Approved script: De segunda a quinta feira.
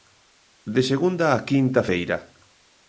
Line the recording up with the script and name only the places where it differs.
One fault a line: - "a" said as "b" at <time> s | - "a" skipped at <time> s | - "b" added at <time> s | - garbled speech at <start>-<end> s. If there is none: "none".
none